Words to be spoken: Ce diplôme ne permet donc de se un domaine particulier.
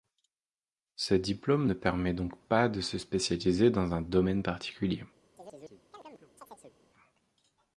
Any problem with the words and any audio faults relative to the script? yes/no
yes